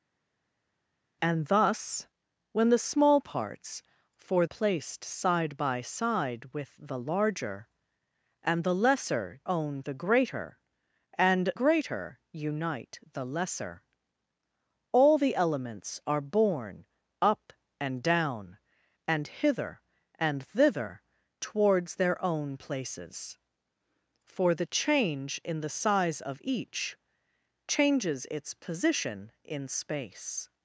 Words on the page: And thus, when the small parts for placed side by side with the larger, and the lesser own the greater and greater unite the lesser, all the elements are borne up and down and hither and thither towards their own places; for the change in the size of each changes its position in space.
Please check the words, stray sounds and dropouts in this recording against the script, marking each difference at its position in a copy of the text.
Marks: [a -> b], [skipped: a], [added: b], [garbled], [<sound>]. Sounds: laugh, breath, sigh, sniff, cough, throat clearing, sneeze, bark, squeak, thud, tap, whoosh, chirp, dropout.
And thus, when the small parts for placed side by side with the larger, and the lesser own the greater and greater unite the lesser, all the elements are borne up and down and hither and thither towards their own places; for the change in the size of each changes its position in space.